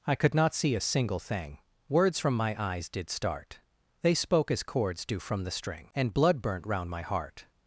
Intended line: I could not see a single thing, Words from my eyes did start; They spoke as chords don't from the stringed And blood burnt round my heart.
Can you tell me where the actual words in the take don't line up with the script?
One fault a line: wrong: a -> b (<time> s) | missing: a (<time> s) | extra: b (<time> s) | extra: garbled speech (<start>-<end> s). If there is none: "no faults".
wrong: don't -> do (5.1 s)
wrong: stringed -> string (5.5 s)